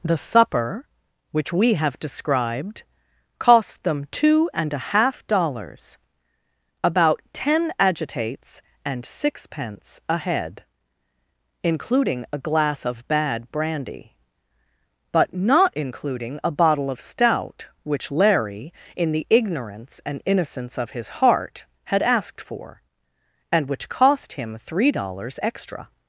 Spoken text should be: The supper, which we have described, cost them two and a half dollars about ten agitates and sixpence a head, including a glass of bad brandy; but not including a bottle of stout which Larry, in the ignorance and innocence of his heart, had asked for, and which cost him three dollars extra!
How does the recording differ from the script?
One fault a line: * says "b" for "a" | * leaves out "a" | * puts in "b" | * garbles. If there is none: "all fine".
all fine